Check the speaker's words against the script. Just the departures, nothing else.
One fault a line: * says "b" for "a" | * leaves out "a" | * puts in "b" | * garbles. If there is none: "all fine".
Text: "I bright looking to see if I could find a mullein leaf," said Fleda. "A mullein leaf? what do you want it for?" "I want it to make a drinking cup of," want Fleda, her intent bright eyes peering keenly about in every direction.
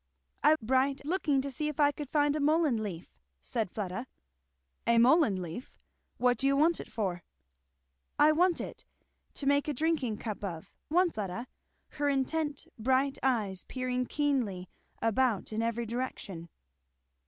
all fine